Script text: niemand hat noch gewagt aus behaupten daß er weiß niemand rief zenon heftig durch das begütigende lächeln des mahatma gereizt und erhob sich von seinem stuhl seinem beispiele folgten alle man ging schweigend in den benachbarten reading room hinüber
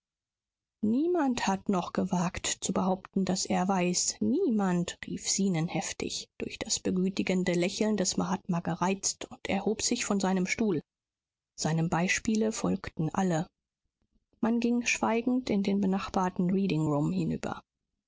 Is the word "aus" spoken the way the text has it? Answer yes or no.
no